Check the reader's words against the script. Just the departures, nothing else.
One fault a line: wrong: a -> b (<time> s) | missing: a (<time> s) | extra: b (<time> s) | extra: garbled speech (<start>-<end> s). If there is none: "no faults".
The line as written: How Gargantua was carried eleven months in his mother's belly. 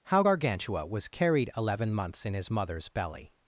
no faults